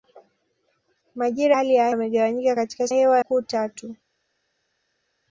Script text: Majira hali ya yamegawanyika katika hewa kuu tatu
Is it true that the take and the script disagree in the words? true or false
false